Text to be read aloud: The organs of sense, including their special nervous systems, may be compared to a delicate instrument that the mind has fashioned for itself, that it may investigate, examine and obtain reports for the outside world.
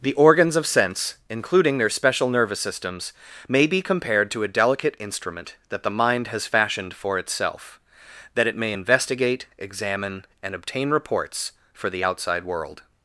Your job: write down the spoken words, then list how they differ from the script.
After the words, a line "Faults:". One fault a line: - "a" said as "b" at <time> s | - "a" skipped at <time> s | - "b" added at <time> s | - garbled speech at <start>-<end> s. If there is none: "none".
The organs of sense, including their special nervous systems, may be compared to a delicate instrument that the mind has fashioned for itself, that it may investigate, examine and obtain reports for the outside world.
Faults:
none